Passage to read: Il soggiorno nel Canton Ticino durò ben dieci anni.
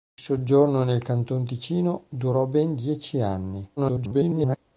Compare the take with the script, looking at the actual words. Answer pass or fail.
fail